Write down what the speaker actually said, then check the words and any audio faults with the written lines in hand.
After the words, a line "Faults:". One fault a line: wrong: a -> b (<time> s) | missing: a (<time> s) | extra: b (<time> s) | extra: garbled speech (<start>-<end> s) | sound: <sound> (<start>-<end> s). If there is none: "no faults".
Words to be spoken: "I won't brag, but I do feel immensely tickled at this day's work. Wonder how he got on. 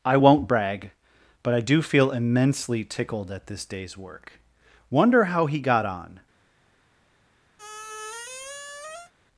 "I won't brag, but I do feel immensely tickled at this day's work. Wonder how he got on.
Faults:
sound: squeak (7.6-9.1 s)